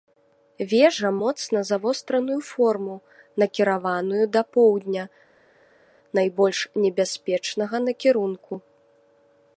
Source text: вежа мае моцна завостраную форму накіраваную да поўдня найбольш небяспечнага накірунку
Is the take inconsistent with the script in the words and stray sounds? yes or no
yes